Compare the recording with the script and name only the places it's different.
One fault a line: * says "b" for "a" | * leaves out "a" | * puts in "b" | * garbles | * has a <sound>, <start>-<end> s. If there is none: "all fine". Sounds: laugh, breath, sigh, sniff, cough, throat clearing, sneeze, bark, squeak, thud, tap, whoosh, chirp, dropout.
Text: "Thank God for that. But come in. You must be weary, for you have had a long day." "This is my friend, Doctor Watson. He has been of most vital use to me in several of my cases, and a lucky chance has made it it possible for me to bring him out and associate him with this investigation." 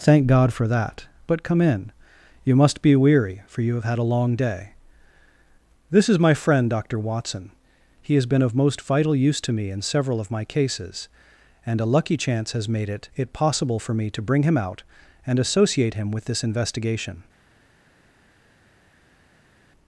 all fine